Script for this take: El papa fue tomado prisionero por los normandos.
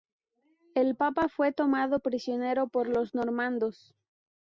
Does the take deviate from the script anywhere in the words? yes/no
no